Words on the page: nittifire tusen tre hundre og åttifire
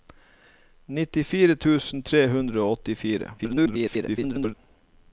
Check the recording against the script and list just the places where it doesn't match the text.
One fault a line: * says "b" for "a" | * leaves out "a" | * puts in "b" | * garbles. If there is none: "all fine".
* garbles